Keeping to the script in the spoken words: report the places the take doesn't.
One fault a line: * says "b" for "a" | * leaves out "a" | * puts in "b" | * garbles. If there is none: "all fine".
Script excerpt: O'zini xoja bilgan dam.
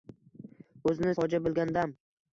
all fine